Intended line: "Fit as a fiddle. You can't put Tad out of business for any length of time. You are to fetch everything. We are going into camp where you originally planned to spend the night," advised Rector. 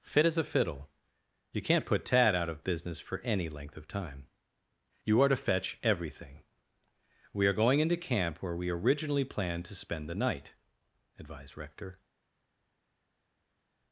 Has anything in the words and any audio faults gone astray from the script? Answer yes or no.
yes